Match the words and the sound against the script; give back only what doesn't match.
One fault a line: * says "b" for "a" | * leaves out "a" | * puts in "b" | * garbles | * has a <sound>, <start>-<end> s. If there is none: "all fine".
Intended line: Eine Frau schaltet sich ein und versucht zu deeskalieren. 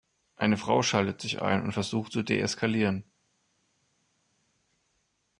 all fine